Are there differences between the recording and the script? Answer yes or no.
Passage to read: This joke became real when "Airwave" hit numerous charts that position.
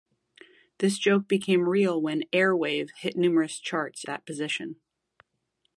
no